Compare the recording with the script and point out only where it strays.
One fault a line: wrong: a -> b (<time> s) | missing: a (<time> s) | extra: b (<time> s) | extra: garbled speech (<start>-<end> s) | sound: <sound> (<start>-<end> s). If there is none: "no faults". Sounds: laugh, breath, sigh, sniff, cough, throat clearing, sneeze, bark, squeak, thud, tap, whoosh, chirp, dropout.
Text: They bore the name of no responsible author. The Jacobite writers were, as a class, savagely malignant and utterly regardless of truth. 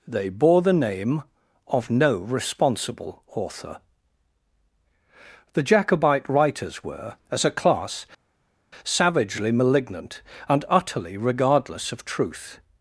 no faults